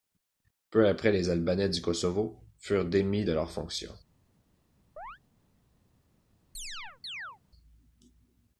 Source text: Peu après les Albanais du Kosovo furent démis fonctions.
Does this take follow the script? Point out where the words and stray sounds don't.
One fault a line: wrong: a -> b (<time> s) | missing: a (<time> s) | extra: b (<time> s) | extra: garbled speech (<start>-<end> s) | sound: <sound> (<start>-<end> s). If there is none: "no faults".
extra: de leurs (3.2 s)
sound: chirp (5.0-5.2 s)
sound: chirp (6.5-7.4 s)